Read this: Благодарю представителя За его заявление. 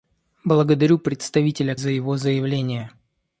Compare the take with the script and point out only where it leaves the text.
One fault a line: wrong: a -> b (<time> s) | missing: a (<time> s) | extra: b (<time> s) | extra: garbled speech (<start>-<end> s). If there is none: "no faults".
no faults